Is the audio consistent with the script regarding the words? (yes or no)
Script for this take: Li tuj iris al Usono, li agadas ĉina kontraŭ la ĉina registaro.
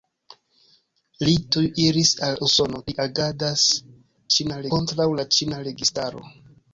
yes